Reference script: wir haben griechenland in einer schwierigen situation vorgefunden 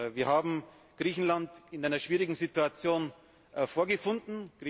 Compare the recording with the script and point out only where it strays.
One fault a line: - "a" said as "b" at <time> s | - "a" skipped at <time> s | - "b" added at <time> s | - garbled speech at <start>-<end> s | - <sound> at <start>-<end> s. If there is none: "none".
none